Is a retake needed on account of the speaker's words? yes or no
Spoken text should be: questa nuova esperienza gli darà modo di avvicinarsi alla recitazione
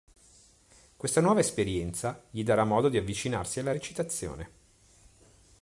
no